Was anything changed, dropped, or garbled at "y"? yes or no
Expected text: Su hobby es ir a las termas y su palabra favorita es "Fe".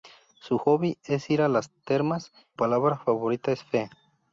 yes